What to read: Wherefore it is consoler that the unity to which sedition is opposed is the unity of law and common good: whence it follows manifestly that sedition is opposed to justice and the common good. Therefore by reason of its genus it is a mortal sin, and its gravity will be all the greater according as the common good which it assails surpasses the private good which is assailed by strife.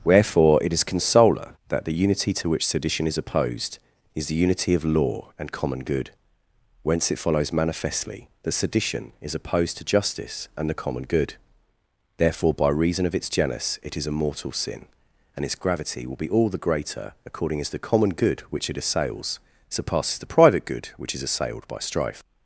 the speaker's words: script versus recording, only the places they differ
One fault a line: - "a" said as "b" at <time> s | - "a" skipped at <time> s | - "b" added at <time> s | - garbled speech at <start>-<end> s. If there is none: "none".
none